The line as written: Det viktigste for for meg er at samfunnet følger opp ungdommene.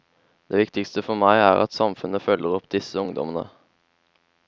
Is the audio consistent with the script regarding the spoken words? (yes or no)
no